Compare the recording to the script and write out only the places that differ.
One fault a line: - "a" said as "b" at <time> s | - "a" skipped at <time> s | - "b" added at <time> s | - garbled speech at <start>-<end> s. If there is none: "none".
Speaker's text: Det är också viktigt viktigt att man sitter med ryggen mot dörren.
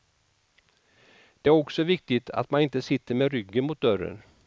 - "viktigt" skipped at 2.3 s
- "inte" added at 2.6 s